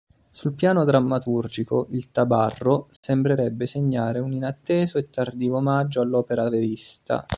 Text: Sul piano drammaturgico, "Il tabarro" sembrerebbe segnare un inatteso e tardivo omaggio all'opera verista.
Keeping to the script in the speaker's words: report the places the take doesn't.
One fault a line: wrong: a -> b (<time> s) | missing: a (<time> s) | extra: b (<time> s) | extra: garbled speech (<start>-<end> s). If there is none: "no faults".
no faults